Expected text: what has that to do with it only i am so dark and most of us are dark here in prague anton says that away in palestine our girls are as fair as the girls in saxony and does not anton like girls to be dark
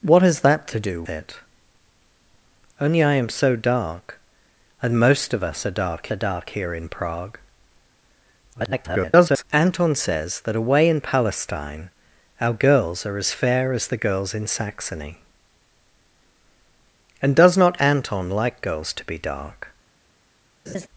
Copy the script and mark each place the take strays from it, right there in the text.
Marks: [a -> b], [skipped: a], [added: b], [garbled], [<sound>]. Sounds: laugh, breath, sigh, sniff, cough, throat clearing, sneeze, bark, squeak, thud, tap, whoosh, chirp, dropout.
what has that to do [skipped: with] it only i am so dark and most of us are dark [added: are dark] here in prague [garbled] anton says that away in palestine our girls are as fair as the girls in saxony and does not anton like girls to be dark [laugh]